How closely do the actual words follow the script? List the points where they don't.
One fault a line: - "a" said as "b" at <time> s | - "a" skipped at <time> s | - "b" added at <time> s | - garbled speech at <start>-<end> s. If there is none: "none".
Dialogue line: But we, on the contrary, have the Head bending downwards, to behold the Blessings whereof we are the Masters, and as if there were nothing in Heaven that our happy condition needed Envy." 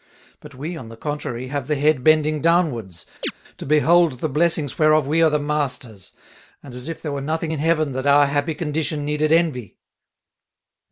none